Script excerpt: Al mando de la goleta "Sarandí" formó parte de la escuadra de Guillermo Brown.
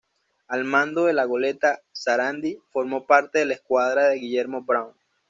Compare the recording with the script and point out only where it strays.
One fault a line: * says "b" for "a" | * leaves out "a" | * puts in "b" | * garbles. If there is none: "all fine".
all fine